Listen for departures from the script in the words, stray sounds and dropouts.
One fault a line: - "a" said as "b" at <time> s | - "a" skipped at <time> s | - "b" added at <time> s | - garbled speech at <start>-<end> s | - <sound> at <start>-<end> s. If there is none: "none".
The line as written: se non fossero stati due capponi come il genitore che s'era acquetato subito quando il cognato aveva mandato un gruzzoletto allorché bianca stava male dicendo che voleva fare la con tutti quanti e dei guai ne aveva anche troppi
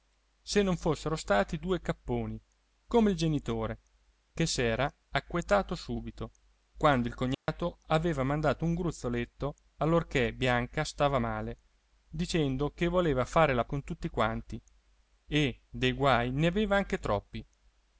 - dropout at 7.3-7.5 s